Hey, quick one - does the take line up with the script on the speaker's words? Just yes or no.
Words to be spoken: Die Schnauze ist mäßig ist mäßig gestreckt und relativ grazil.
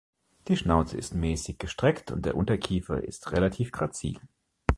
no